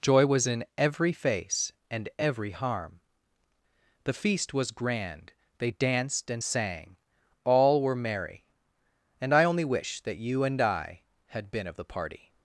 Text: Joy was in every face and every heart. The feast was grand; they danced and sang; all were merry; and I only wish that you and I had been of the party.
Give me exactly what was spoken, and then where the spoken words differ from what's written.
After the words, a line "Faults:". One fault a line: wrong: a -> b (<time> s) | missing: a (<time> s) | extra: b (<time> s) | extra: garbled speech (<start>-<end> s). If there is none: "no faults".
Joy was in every face and every harm. The feast was grand; they danced and sang; all were merry; and I only wish that you and I had been of the party.
Faults:
wrong: heart -> harm (2.5 s)